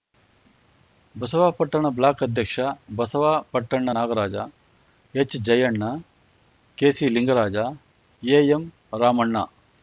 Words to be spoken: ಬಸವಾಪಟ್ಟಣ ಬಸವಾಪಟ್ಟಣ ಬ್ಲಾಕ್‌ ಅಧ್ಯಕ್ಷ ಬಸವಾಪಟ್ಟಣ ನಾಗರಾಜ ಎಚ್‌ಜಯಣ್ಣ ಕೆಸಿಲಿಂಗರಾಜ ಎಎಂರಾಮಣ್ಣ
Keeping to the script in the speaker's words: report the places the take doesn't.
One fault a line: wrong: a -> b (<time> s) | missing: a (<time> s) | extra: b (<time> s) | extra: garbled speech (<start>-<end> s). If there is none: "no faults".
missing: ಬಸವಾಪಟ್ಟಣ (1.9 s)